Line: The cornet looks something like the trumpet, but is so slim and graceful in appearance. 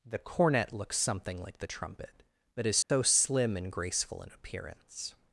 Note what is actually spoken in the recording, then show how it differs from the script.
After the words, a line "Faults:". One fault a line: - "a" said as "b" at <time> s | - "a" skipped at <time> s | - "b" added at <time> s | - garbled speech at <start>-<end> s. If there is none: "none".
The cornet looks something like the trumpet, but is so slim and graceful in appearance.
Faults:
none